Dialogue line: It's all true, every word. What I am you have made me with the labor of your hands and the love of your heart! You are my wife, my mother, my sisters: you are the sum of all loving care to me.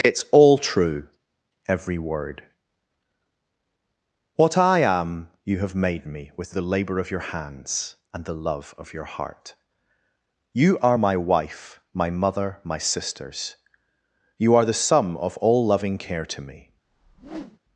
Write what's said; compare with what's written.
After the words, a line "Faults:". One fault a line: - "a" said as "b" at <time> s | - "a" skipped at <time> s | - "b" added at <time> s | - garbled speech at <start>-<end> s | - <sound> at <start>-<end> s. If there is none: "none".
It's all true, every word. What I am you have made me with the labor of your hands and the love of your heart! You are my wife, my mother, my sisters: you are the sum of all loving care to me.
Faults:
- whoosh at 16.8-17.6 s